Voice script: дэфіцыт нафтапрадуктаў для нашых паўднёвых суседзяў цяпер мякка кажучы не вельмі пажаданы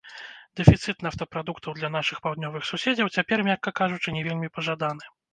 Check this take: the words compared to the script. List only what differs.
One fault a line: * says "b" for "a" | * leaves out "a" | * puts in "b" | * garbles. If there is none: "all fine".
all fine